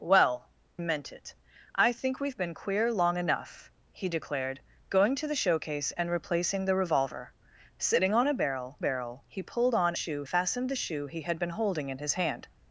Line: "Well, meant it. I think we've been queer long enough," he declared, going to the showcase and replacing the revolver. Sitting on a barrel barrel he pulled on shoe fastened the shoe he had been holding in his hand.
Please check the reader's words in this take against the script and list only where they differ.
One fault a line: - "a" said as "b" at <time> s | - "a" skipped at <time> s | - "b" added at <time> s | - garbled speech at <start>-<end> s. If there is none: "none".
none